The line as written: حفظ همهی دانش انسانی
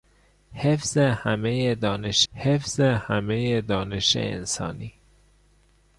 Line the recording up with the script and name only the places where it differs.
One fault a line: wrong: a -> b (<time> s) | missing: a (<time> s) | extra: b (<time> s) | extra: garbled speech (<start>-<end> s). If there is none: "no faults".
extra: حفظ همهی دانش (2.3 s)